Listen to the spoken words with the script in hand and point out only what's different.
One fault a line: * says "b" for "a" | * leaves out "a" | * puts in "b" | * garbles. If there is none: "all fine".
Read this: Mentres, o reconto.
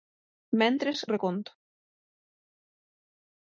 all fine